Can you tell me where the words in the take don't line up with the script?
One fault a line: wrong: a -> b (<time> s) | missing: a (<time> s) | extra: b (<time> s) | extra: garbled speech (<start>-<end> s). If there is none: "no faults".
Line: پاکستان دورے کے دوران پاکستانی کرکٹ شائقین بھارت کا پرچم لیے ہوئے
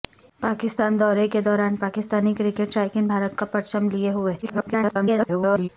extra: garbled speech (4.4-5.7 s)